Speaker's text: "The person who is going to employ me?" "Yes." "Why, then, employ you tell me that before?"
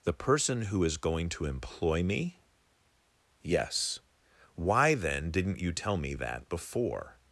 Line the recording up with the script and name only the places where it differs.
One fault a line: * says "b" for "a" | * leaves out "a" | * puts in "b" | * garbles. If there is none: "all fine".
* says "didn't" for "employ"